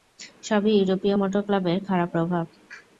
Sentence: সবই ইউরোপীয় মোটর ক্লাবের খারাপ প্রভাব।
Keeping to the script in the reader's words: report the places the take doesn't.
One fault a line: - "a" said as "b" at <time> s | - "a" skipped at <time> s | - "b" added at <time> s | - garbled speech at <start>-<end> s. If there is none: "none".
none